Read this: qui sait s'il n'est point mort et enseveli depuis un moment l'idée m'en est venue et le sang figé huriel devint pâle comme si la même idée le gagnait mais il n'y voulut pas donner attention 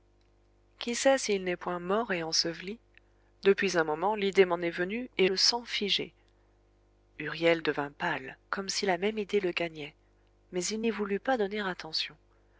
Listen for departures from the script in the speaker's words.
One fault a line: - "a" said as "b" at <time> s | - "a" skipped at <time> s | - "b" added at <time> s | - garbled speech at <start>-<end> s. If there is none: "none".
none